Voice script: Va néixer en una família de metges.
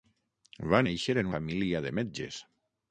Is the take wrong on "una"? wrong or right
wrong